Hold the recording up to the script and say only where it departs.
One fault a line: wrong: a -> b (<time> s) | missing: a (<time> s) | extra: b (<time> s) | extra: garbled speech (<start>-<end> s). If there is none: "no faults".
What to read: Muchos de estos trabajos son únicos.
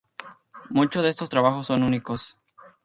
no faults